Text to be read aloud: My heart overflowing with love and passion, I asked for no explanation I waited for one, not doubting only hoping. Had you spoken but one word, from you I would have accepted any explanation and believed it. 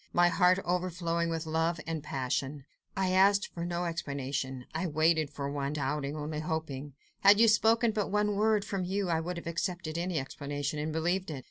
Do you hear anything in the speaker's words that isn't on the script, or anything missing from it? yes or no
yes